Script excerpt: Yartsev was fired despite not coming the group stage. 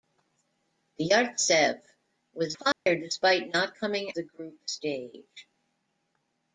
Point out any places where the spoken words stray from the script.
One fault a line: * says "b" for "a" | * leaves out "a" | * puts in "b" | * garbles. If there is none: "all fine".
all fine